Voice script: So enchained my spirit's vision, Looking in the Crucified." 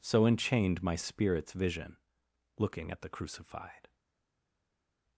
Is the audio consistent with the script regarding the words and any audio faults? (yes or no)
no